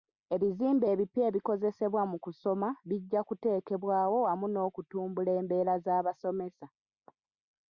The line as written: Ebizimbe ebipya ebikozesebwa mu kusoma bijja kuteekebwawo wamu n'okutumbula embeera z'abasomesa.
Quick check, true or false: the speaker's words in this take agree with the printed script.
true